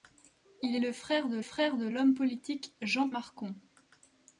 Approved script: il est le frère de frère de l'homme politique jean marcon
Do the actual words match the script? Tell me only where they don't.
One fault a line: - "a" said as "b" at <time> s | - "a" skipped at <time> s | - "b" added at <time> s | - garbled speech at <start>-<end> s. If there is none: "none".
none